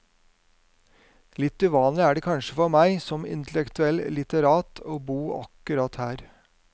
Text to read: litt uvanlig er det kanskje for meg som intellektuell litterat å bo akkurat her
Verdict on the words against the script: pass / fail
pass